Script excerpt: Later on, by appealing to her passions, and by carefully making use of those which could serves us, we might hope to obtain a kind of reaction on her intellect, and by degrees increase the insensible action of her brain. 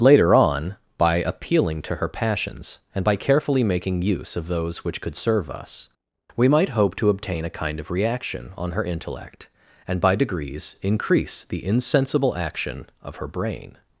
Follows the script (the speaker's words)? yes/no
no